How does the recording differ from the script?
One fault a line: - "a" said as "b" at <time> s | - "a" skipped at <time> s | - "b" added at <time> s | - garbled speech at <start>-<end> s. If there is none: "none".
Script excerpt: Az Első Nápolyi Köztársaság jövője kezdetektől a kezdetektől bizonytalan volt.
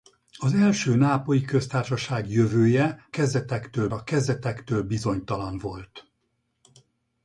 none